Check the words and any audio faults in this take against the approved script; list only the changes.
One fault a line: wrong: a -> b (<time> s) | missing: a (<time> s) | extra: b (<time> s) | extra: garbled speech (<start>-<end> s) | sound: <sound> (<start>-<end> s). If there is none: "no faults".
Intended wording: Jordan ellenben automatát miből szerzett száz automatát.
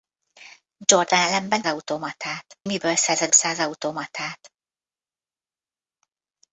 no faults